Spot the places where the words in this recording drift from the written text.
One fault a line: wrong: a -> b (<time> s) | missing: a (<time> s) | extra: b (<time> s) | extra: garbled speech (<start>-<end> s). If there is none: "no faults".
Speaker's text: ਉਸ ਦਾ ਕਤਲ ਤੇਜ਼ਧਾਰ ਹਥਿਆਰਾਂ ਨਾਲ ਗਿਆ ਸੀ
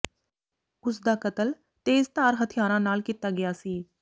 extra: ਕੀਤਾ (3.0 s)